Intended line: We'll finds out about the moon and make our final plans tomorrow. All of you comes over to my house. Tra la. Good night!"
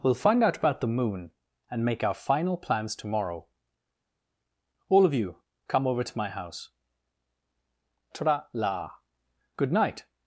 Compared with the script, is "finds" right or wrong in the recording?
wrong